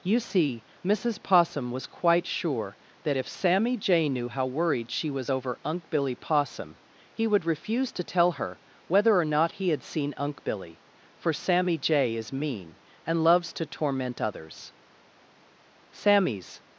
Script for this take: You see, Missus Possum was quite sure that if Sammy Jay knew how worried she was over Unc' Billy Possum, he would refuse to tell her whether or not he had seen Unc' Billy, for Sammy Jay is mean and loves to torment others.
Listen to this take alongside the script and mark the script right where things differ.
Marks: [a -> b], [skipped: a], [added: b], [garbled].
You see, Missus Possum was quite sure that if Sammy Jay knew how worried she was over Unc' Billy Possum, he would refuse to tell her whether or not he had seen Unc' Billy, for Sammy Jay is mean and loves to torment others. [added: Sammy's]